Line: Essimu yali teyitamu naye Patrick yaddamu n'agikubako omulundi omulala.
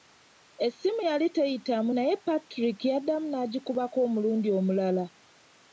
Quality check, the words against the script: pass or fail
pass